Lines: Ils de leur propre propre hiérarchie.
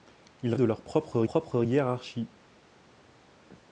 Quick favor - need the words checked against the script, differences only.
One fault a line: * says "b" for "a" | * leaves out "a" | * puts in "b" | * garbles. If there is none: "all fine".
all fine